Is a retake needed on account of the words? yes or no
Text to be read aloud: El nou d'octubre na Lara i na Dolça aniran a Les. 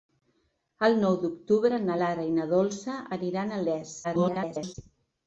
yes